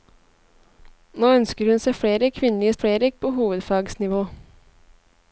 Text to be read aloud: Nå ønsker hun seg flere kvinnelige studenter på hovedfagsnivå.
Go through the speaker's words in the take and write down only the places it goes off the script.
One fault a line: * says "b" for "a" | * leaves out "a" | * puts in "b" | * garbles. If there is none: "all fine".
* says "flere" for "studenter"